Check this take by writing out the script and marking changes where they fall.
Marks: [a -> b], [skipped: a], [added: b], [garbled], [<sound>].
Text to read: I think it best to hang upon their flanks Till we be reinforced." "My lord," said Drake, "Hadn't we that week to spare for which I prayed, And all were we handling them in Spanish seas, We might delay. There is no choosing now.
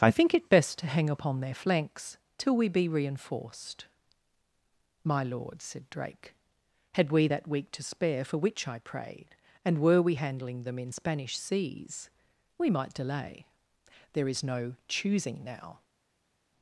I think it best to hang upon their flanks Till we be reinforced." "My lord," said Drake, ["Hadn't -> Had] we that week to spare for which I prayed, And [skipped: all] were we handling them in Spanish seas, We might delay. There is no choosing now.